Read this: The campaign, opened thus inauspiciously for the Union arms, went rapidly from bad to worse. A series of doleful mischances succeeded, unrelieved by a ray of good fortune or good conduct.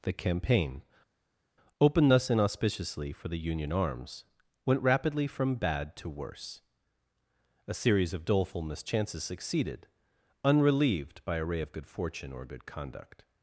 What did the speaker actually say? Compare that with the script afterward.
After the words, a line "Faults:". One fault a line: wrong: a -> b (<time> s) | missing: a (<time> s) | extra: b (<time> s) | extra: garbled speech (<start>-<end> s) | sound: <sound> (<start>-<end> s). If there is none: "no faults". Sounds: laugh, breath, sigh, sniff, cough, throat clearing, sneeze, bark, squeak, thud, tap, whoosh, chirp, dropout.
The campaign, opened thus inauspiciously for the Union arms, went rapidly from bad to worse. A series of doleful mischances succeeded, unrelieved by a ray of good fortune or good conduct.
Faults:
no faults